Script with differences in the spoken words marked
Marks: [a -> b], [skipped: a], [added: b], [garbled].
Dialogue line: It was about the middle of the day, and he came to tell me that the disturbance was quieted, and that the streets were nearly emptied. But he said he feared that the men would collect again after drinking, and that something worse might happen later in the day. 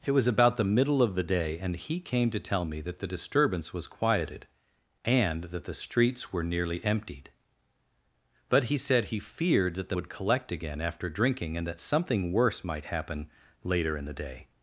It was about the middle of the day, and he came to tell me that the disturbance was quieted, and that the streets were nearly emptied. But he said he feared that the [skipped: men] would collect again after drinking, and that something worse might happen later in the day.